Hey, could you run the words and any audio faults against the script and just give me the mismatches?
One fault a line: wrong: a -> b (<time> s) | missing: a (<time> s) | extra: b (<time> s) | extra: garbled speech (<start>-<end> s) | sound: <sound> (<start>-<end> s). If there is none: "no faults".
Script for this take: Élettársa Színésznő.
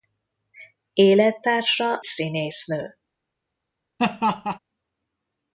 sound: laugh (4.0-4.6 s)